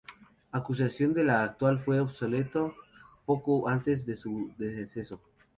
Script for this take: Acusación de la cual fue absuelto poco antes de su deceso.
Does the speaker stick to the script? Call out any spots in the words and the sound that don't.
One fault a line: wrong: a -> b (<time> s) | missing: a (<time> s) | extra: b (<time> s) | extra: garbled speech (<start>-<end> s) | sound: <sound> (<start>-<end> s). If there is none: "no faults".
no faults